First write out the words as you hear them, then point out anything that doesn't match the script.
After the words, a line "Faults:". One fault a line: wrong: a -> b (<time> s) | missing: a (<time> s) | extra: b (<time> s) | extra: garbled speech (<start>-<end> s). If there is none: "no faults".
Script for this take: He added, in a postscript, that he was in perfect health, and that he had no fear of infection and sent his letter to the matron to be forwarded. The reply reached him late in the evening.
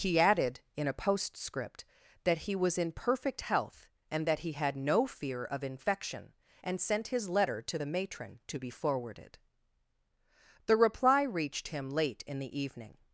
He added, in a postscript, that he was in perfect health, and that he had no fear of infection and sent his letter to the matron to be forwarded. The reply reached him late in the evening.
Faults:
no faults